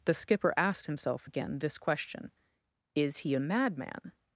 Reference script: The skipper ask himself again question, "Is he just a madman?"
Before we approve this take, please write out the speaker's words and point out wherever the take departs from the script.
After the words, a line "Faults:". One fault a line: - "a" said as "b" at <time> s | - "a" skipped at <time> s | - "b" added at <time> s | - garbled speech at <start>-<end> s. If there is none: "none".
The skipper asked himself again this question, "Is he a madman?"
Faults:
- "ask" said as "asked" at 0.6 s
- "this" added at 1.6 s
- "just" skipped at 3.3 s